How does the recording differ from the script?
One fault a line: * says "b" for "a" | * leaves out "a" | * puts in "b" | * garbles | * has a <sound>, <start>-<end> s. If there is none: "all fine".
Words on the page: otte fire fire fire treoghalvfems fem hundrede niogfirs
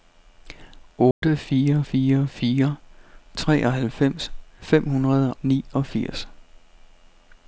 * has a dropout, 1.1-1.2 s